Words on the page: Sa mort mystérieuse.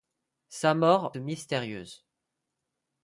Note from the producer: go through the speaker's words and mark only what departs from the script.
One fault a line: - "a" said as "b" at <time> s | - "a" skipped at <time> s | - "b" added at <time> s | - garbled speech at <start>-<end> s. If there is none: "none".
none